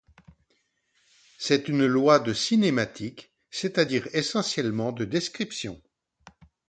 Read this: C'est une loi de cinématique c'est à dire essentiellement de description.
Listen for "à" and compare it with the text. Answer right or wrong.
right